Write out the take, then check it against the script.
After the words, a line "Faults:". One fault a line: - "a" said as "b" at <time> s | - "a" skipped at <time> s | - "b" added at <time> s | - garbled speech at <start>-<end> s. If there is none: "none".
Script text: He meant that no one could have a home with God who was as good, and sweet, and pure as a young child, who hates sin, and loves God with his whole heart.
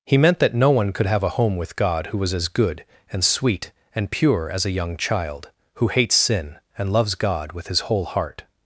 He meant that no one could have a home with God who was as good, and sweet, and pure as a young child, who hates sin, and loves God with his whole heart.
Faults:
none